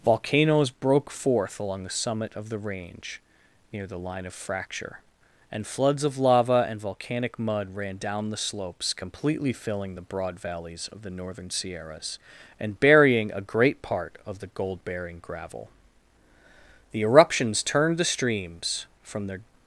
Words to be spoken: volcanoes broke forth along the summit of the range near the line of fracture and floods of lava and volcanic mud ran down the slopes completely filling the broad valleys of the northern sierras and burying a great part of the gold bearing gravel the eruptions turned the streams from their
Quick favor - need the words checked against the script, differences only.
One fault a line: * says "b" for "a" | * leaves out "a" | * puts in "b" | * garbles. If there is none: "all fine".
all fine